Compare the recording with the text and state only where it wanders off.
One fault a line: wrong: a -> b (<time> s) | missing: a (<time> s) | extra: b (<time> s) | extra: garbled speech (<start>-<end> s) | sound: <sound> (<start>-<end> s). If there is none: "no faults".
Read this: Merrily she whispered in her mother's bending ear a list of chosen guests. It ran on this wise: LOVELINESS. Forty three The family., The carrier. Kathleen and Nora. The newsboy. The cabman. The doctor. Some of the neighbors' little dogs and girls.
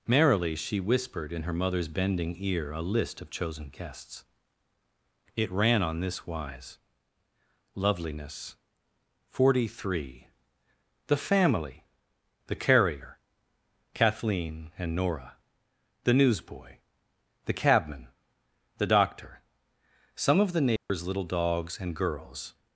sound: dropout (20.8-20.9 s)